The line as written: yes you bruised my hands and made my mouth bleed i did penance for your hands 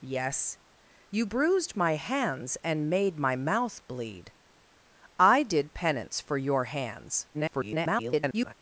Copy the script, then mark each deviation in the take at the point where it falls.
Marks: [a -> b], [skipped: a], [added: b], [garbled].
yes you bruised my hands and made my mouth bleed i did penance for your hands [garbled]